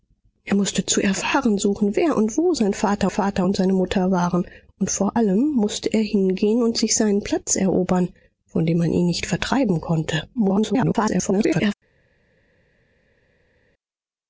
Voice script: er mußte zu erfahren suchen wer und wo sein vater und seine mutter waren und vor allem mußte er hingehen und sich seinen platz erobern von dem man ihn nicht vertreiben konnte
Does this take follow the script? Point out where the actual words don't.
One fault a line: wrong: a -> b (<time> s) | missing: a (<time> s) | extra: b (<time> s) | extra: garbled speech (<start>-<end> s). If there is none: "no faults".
extra: vater (3.1 s)
extra: garbled speech (10.3-11.7 s)